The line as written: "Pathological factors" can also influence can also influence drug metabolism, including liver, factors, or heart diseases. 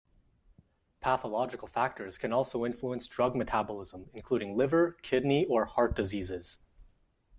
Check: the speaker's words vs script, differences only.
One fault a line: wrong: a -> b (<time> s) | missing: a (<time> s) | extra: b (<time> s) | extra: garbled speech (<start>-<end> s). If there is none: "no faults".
missing: can also influence (3.1 s)
wrong: factors -> kidney (4.9 s)